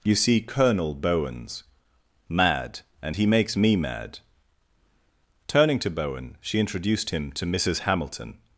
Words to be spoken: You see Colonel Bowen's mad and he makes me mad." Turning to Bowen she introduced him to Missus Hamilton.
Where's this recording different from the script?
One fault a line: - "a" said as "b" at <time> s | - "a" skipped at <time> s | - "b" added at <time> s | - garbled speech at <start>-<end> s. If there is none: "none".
none